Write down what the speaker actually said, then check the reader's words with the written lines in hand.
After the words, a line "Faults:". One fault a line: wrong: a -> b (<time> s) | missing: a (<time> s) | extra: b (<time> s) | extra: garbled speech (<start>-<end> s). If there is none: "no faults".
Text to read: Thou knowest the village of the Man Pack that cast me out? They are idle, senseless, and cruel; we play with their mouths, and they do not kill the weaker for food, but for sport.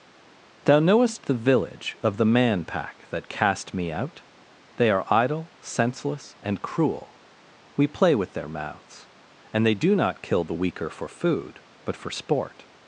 Thou knowest the village of the Man Pack that cast me out? They are idle, senseless, and cruel; we play with their mouths, and they do not kill the weaker for food, but for sport.
Faults:
no faults